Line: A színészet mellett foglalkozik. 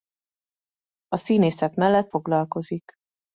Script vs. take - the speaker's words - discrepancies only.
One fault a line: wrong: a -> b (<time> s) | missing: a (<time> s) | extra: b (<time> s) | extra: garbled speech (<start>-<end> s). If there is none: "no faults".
no faults